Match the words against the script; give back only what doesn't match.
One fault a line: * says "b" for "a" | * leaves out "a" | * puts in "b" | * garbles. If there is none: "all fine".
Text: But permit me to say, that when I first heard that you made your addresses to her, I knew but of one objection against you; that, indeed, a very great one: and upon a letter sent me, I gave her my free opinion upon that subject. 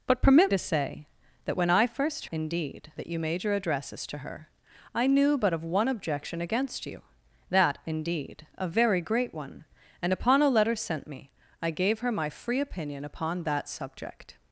* leaves out "me"
* says "indeed" for "heard"